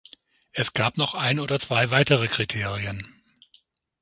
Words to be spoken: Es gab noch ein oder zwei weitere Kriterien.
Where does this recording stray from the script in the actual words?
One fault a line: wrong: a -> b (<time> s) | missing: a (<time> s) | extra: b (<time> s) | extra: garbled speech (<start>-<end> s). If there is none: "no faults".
no faults